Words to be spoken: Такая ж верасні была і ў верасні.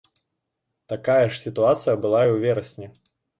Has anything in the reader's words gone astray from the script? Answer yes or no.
yes